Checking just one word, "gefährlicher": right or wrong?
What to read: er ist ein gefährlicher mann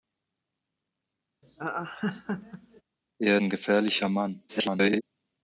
right